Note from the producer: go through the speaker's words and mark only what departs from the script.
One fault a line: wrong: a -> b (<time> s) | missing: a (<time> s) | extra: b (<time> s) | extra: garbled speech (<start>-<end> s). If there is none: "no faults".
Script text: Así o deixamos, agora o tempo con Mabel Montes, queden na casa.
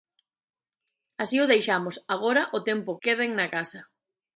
missing: con Mabel Montes (2.9 s)